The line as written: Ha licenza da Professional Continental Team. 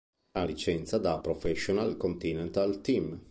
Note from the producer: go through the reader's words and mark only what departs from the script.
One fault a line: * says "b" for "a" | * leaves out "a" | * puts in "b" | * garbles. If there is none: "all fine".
all fine